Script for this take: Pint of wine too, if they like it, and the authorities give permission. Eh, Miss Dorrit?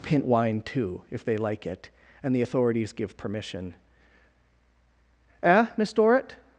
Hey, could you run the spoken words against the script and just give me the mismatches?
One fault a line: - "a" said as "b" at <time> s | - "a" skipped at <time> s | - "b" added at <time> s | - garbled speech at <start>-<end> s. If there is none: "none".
- "of" skipped at 0.2 s